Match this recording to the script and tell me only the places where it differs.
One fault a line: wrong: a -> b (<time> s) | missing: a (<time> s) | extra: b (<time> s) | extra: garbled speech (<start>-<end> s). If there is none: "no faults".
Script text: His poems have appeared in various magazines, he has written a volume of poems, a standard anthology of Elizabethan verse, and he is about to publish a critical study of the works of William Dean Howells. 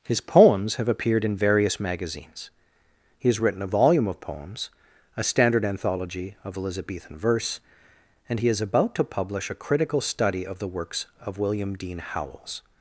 no faults